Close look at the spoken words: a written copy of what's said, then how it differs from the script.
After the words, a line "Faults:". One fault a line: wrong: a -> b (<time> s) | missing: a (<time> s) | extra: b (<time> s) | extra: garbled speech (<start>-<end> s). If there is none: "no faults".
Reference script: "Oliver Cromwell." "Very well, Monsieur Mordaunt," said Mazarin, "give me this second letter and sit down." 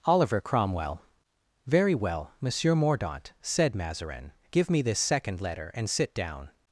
"Oliver Cromwell." "Very well, Monsieur Mordaunt," said Mazarin, "give me this second letter and sit down."
Faults:
no faults